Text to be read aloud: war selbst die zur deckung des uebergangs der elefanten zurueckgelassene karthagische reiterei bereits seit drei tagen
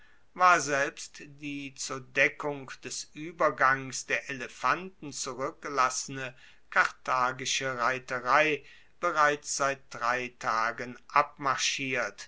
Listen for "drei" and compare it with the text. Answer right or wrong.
right